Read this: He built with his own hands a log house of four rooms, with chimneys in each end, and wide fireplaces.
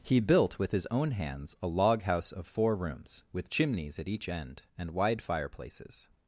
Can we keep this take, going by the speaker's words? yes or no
no